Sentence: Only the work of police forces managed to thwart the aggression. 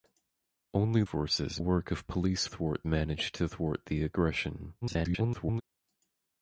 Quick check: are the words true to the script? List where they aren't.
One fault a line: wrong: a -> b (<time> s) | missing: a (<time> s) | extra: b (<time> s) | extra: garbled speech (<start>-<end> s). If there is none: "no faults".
wrong: the -> forces (1.0 s)
wrong: forces -> thwart (2.4 s)
extra: garbled speech (4.8-5.6 s)